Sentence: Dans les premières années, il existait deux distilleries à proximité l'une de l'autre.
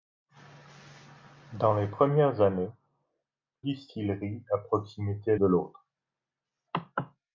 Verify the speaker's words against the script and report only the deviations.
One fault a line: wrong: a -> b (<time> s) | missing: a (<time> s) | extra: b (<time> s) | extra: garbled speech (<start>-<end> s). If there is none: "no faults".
missing: il existait deux (2.7 s)
missing: l'une (5.4 s)